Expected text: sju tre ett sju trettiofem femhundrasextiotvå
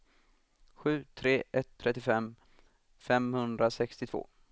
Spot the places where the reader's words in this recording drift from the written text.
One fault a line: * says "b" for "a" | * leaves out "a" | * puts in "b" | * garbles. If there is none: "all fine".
* leaves out "sju"